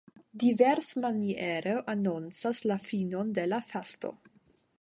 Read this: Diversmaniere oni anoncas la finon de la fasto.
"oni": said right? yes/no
no